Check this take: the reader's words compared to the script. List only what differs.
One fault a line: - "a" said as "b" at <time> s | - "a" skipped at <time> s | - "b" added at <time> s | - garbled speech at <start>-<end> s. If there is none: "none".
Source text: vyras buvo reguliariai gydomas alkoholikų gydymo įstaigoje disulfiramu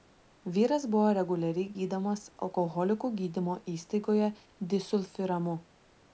none